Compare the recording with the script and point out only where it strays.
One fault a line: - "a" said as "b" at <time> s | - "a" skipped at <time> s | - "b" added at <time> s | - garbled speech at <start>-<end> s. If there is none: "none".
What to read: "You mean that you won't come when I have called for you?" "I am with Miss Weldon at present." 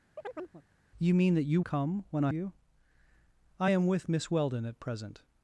- "won't" skipped at 1.6 s
- "have called for" skipped at 2.3 s